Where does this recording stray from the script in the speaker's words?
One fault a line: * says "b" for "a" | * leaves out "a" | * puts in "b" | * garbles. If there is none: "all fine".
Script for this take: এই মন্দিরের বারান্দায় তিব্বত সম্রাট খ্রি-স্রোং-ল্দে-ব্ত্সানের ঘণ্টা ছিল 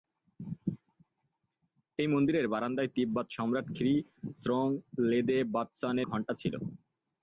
all fine